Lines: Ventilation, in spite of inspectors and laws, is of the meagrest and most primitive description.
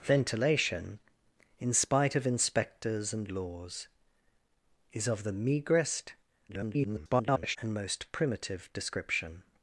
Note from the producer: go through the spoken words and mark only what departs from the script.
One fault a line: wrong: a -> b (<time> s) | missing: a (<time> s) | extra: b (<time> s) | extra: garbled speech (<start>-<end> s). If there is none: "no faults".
extra: garbled speech (6.5-7.6 s)